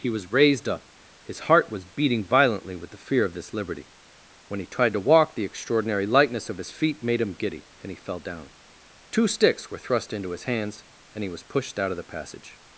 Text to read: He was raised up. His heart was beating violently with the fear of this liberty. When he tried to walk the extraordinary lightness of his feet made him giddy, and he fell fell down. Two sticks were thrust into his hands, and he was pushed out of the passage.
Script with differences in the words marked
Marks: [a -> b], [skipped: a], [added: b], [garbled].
He was raised up. His heart was beating violently with the fear of this liberty. When he tried to walk the extraordinary lightness of his feet made him giddy, and he fell [skipped: fell] down. Two sticks were thrust into his hands, and he was pushed out of the passage.